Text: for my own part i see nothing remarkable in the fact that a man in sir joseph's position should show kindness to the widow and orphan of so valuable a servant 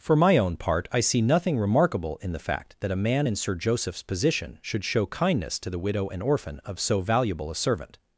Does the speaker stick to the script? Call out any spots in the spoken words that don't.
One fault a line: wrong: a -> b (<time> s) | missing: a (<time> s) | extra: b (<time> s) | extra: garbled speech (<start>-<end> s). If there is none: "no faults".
no faults